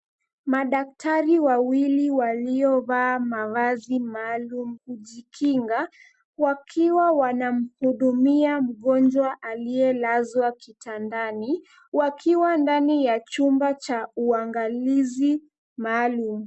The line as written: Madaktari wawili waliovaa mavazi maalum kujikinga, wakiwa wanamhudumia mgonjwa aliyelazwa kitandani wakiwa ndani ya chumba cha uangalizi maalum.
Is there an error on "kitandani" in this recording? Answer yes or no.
no